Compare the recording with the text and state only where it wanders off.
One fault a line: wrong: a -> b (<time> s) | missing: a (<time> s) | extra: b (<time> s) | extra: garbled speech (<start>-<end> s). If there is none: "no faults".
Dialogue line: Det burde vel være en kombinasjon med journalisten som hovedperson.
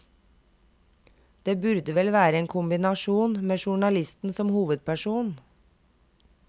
no faults